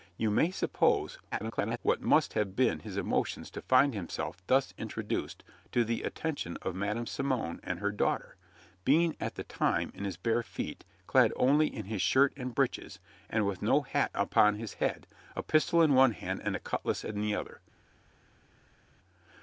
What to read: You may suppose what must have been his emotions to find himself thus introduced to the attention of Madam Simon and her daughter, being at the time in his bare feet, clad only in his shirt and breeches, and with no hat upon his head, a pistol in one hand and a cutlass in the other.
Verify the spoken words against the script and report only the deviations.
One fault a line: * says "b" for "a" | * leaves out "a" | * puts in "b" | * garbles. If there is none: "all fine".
* garbles